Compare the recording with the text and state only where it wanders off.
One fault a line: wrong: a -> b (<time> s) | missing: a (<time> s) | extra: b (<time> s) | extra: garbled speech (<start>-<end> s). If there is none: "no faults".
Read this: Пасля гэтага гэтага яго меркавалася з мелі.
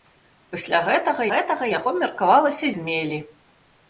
no faults